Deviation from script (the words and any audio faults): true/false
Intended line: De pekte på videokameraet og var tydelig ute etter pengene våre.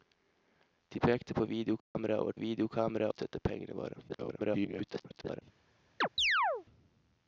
true